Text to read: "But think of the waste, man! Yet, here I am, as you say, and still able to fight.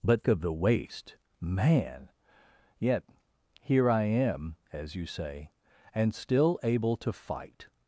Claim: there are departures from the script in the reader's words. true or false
true